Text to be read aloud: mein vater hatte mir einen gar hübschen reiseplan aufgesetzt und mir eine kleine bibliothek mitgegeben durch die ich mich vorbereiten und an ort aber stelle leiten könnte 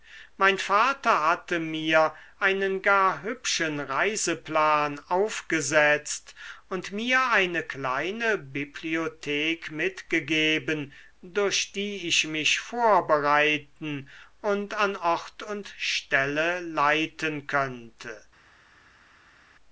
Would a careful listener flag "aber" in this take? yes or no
yes